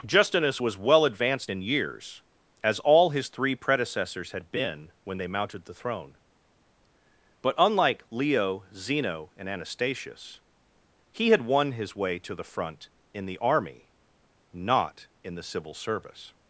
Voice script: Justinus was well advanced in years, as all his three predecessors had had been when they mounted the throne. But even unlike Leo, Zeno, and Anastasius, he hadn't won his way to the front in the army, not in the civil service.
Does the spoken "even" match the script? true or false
false